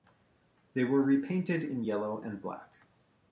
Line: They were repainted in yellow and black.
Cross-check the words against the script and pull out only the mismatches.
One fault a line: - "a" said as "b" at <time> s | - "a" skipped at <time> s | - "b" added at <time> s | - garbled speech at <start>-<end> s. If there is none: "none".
none